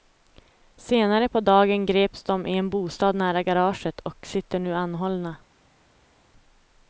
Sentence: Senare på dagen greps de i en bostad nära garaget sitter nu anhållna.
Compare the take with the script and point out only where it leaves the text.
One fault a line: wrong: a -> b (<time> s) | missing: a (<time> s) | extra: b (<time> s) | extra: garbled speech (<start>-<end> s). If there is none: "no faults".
extra: och (4.0 s)